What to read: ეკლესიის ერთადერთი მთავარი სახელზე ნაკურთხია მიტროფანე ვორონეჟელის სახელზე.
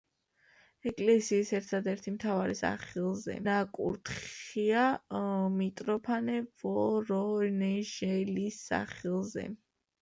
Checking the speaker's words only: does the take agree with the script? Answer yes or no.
yes